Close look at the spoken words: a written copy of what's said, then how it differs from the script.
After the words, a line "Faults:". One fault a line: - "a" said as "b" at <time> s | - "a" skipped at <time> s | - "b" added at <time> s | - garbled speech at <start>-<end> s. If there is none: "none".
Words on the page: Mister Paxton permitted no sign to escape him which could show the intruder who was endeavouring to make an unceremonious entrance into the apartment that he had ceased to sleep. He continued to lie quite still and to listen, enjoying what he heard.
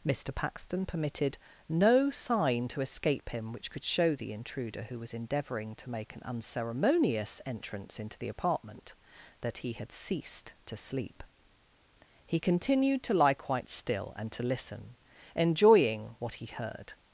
Mister Paxton permitted no sign to escape him which could show the intruder who was endeavouring to make an unceremonious entrance into the apartment that he had ceased to sleep. He continued to lie quite still and to listen, enjoying what he heard.
Faults:
none